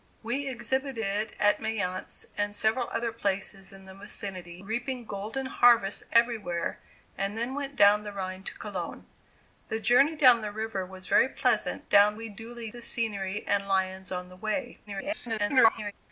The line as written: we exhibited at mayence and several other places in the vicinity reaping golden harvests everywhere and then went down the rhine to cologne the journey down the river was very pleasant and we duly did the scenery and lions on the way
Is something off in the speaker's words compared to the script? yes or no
yes